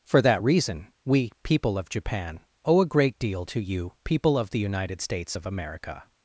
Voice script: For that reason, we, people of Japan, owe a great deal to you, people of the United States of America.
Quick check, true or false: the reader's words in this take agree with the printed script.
true